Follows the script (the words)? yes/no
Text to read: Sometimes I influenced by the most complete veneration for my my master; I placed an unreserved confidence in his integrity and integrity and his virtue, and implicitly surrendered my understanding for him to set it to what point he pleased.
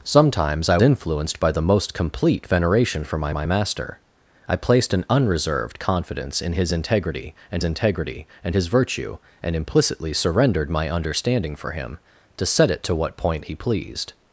yes